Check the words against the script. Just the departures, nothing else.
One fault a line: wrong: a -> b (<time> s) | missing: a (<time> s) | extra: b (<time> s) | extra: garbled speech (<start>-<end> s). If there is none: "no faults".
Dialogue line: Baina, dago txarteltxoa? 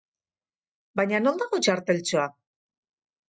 extra: non (1.2 s)